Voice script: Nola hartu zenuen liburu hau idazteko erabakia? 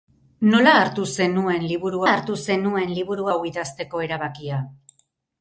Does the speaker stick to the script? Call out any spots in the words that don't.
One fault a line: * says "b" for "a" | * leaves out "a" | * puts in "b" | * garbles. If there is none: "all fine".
* puts in "hartu zenuen liburu"